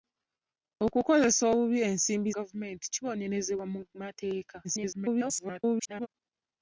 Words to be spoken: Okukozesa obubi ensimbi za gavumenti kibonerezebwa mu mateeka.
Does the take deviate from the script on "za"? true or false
true